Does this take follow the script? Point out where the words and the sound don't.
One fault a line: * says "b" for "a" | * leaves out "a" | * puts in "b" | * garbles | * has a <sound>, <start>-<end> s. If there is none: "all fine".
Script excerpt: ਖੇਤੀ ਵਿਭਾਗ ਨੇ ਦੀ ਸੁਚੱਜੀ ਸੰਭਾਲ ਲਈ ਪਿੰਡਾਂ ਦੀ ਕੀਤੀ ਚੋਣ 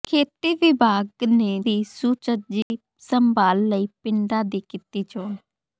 * has a dropout, 2.6-2.7 s